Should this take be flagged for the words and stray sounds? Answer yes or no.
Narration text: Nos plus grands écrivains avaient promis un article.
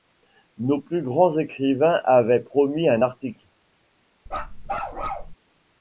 yes